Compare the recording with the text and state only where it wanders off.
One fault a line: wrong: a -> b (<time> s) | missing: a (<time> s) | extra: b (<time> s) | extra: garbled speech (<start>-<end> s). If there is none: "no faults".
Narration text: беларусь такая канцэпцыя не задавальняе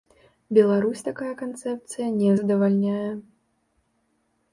no faults